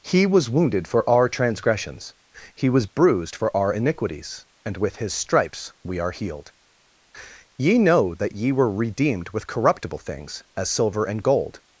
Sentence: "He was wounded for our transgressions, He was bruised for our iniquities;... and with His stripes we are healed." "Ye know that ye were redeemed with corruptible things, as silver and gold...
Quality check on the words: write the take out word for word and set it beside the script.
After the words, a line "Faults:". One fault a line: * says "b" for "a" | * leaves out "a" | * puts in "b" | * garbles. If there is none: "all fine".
"He was wounded for our transgressions, He was bruised for our iniquities;... and with His stripes we are healed." "Ye know that ye were redeemed with corruptible things, as silver and gold...
Faults:
all fine